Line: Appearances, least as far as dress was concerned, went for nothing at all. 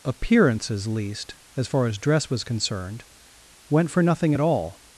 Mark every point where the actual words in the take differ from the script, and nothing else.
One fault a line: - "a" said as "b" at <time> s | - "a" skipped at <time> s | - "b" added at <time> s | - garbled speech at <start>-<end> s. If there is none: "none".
none